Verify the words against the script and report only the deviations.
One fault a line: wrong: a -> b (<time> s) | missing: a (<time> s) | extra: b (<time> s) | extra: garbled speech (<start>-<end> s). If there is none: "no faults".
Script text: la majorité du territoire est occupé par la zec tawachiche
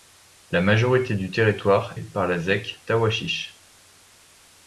missing: est occupé (1.9 s)